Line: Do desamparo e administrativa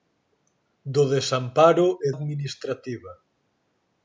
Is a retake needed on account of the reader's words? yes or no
no